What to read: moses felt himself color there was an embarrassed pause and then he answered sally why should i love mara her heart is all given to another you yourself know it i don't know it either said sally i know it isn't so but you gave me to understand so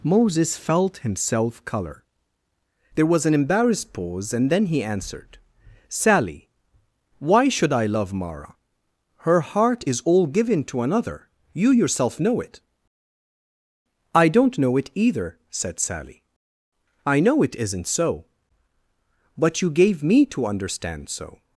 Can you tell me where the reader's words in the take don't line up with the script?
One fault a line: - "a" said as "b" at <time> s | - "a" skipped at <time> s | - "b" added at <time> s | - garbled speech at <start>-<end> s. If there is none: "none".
none